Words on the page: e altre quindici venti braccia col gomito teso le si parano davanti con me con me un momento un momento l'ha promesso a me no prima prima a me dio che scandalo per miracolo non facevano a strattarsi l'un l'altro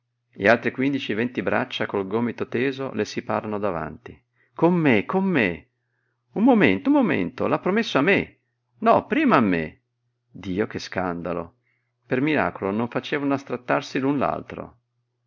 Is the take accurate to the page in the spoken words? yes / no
no